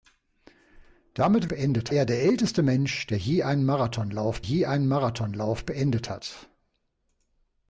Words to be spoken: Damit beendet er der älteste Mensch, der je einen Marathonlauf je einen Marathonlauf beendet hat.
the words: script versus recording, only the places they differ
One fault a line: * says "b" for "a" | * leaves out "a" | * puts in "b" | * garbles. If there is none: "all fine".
all fine